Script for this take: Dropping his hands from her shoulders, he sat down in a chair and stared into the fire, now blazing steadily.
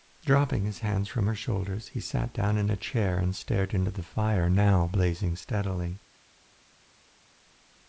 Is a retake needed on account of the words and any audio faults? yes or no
no